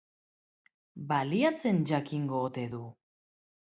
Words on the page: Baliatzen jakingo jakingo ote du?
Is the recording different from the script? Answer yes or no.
yes